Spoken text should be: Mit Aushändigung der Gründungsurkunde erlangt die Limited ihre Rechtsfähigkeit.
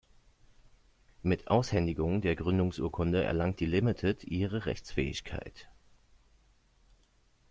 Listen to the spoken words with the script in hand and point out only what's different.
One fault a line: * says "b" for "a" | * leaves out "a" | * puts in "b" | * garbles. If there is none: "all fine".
all fine